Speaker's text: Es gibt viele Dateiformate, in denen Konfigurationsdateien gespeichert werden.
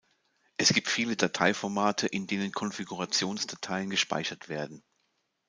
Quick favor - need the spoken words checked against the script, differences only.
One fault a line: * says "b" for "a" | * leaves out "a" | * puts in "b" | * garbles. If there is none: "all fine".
all fine